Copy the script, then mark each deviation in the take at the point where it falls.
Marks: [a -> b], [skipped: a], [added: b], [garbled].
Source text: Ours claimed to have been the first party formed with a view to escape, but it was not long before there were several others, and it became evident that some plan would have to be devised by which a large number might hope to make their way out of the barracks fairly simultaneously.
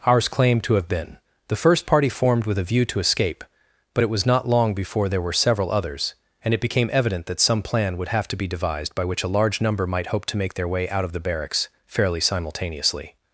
Ours claimed to have been the first party formed with a view to escape, but it was not long before there were several others, and it became evident that some plan would have to be devised by which a large number might hope to make their way out of the barracks fairly simultaneously.